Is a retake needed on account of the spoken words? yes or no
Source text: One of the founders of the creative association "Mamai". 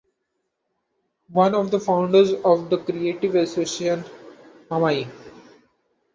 no